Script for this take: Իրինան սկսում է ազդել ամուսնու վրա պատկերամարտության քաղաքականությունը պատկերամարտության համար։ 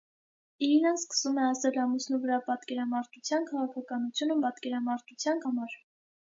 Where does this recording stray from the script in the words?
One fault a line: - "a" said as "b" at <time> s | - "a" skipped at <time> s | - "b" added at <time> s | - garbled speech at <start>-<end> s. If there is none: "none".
none